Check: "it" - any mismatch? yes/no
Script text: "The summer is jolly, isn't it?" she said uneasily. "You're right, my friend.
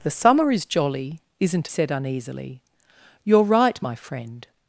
yes